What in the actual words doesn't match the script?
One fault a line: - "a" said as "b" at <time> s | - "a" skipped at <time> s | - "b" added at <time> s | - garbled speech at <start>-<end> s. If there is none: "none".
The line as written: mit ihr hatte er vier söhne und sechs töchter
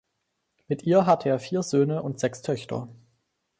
none